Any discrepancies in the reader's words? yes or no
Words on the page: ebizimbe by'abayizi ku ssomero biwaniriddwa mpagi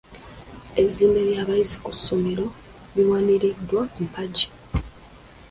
no